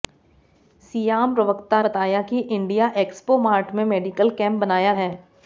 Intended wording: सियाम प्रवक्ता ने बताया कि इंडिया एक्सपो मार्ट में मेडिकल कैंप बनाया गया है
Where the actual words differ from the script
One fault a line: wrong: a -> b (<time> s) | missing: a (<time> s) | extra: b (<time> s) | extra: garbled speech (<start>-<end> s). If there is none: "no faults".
missing: ने (1.8 s)
missing: गया (4.9 s)